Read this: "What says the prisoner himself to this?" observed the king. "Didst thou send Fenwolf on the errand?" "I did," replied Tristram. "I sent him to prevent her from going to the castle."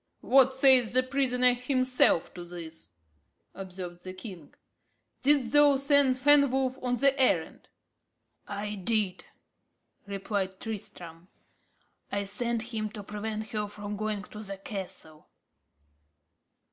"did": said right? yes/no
yes